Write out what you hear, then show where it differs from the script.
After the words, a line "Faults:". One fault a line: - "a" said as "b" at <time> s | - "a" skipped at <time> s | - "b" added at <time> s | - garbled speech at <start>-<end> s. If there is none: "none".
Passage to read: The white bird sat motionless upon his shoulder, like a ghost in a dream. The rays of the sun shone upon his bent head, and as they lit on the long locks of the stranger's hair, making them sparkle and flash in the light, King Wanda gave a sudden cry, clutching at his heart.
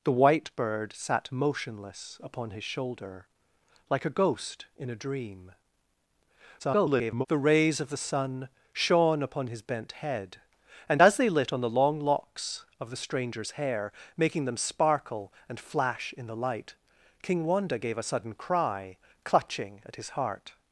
The white bird sat motionless upon his shoulder, like a ghost in a dream. [garbled] The rays of the sun shone upon his bent head, and as they lit on the long locks of the stranger's hair, making them sparkle and flash in the light, King Wanda gave a sudden cry, clutching at his heart.
Faults:
- garbled speech at 6.6-7.3 s